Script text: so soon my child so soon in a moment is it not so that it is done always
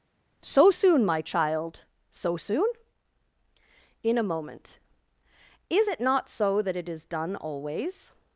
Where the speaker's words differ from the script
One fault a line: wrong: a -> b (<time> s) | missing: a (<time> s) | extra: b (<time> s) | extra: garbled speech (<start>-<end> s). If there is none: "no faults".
no faults